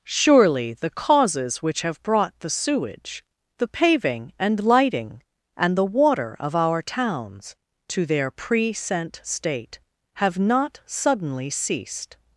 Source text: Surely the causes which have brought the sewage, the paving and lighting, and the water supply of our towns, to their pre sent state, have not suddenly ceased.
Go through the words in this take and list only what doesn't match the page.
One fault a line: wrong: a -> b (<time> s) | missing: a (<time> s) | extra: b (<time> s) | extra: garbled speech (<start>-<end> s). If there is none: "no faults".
missing: supply (6.4 s)